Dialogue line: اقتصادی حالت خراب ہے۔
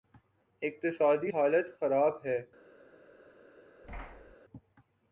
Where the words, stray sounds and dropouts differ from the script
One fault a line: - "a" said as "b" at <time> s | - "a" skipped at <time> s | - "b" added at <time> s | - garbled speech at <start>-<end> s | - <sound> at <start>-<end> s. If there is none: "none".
- thud at 3.8-4.4 s